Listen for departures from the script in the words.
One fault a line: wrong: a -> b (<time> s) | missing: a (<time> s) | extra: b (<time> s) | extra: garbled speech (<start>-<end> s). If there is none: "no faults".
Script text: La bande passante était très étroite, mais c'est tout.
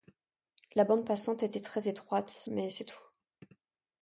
no faults